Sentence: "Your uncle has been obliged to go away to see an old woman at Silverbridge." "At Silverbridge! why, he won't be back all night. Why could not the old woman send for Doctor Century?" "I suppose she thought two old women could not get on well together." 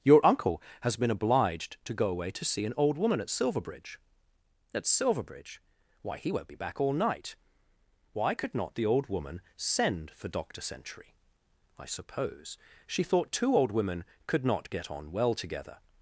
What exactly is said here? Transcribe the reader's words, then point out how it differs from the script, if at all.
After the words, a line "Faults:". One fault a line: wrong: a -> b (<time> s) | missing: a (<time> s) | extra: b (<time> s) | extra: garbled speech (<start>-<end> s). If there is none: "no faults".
"Your uncle has been obliged to go away to see an old woman at Silverbridge." "At Silverbridge! why, he won't be back all night. Why could not the old woman send for Doctor Century?" "I suppose she thought two old women could not get on well together."
Faults:
no faults